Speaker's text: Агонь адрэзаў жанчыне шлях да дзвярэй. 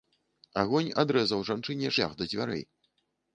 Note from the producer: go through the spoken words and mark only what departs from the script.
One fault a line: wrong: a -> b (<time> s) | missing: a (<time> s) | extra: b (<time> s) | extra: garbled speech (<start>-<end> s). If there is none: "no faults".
no faults